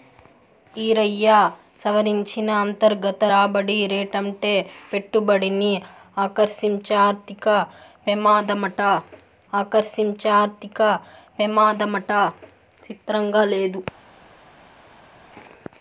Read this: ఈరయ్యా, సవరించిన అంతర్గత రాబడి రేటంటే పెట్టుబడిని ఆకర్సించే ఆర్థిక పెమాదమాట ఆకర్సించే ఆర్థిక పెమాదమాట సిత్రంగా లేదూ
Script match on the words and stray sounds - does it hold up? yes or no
yes